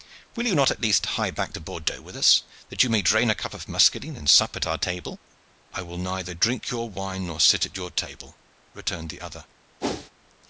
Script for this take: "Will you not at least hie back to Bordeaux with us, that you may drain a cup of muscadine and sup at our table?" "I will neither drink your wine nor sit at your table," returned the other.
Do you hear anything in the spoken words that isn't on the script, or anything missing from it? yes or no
no